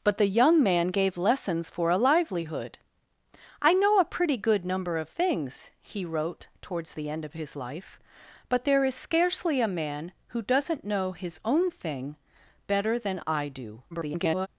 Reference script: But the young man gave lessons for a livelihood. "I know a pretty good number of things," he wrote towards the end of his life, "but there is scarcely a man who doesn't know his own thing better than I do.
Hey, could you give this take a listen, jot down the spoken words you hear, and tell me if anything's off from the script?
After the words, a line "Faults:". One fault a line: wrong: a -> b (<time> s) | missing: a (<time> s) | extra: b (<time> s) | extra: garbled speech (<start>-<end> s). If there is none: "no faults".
But the young man gave lessons for a livelihood. "I know a pretty good number of things," he wrote towards the end of his life, "but there is scarcely a man who doesn't know his own thing better than I do. [garbled]
Faults:
extra: garbled speech (13.9-14.5 s)